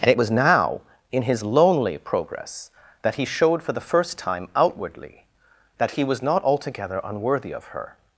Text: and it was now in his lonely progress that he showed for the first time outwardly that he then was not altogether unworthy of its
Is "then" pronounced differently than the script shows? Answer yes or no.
yes